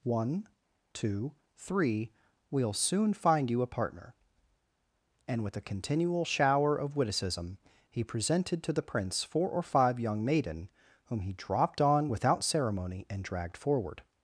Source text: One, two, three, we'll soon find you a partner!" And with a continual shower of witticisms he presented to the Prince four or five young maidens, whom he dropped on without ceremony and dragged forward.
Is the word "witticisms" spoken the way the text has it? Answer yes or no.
no